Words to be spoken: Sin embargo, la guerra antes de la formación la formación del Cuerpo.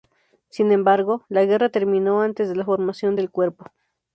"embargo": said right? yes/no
yes